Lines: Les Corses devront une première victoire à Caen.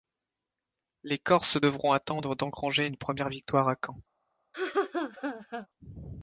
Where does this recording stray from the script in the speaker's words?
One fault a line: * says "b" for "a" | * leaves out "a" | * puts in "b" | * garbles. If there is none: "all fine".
* puts in "attendre d'engranger"